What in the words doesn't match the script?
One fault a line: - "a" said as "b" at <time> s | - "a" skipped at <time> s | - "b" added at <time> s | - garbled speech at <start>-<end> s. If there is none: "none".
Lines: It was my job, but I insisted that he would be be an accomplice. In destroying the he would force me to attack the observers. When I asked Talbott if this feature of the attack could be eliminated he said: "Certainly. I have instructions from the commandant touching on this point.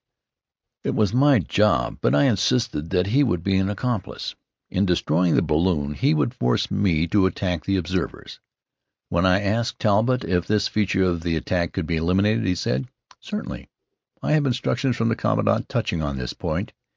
- "be" skipped at 3.6 s
- "balloon" added at 5.4 s